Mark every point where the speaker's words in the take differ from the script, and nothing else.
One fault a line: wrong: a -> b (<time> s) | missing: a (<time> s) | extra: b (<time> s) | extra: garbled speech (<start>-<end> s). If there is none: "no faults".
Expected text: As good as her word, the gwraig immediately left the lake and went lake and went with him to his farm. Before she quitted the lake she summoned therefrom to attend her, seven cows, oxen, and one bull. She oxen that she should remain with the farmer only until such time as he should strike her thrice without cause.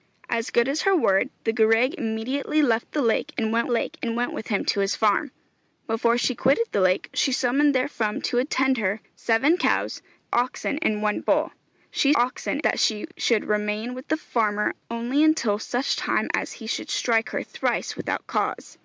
no faults